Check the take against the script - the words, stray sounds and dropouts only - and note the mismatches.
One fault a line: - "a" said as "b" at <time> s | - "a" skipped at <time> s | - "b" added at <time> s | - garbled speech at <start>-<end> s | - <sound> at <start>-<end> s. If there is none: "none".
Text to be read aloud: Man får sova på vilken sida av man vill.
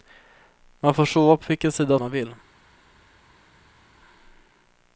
none